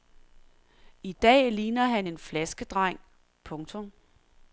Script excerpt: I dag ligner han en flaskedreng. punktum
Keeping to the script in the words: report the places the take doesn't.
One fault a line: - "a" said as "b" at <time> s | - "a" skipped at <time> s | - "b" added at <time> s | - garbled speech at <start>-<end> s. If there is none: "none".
none